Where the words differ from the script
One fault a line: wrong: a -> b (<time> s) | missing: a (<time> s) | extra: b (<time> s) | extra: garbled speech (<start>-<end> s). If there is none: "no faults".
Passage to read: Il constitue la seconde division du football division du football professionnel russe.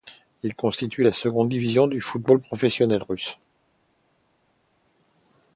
missing: division du football (2.4 s)